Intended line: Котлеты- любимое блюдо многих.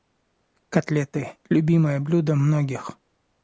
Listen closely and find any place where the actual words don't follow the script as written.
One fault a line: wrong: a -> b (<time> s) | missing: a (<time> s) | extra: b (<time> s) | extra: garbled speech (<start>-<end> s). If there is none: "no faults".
no faults